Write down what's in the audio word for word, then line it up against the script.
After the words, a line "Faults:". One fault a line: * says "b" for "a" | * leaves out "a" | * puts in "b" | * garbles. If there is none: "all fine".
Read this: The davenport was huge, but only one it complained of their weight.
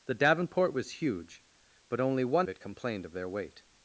The davenport was huge, but only one it complained of their weight.
Faults:
all fine